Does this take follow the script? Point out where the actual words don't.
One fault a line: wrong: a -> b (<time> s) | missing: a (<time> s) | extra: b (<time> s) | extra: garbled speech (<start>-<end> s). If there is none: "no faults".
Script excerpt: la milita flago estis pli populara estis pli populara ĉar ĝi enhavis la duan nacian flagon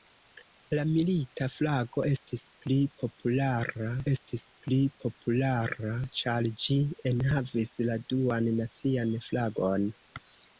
no faults